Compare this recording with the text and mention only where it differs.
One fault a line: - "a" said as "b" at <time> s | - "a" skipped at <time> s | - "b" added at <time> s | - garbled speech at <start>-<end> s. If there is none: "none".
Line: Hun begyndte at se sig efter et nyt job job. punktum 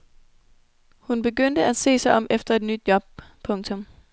- "om" added at 2.1 s
- "job" skipped at 3.0 s